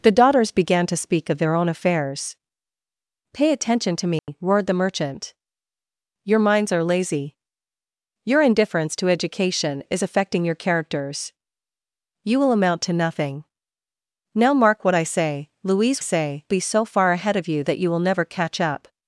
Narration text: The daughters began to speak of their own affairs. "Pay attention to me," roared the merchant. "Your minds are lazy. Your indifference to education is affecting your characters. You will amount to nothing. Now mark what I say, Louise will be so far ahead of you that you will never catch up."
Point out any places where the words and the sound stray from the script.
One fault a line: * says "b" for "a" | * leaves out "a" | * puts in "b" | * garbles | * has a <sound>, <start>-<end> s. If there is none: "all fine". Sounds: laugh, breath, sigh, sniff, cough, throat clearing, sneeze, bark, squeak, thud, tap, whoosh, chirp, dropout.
* has a dropout, 4.2-4.3 s
* says "say" for "will"